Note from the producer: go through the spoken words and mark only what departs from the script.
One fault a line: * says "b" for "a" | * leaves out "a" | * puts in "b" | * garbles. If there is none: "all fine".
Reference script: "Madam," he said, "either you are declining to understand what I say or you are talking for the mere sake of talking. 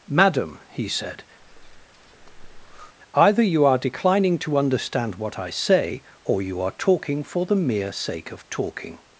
all fine